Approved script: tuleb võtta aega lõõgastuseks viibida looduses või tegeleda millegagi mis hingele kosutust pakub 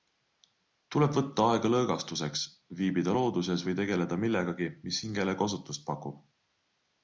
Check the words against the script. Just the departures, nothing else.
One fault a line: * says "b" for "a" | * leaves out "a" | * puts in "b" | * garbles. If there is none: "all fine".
all fine